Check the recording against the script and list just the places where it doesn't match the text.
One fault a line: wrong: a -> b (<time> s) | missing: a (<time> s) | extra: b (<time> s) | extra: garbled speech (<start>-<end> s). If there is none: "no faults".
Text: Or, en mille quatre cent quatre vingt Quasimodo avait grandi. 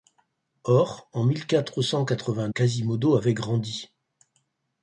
no faults